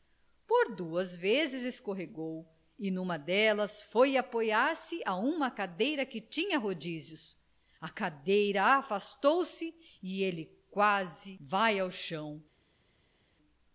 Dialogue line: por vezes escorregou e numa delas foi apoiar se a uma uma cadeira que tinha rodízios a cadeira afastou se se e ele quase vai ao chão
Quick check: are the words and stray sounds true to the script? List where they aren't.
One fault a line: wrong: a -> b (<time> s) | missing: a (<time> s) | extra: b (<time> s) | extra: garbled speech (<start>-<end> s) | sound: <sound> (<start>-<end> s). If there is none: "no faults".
extra: duas (0.8 s)
missing: uma (5.5 s)
missing: se (9.7 s)